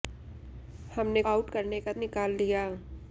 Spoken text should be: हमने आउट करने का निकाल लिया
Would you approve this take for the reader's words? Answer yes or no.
yes